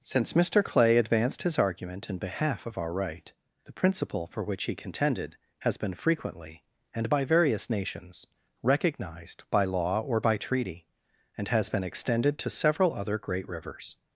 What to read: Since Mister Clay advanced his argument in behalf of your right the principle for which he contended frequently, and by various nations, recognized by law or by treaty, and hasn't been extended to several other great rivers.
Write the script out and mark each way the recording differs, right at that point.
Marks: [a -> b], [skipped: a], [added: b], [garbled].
Since Mister Clay advanced his argument in behalf of [your -> our] right the principle for which he contended [added: has been] frequently, and by various nations, recognized by law or by treaty, and [hasn't -> has] been extended to several other great rivers.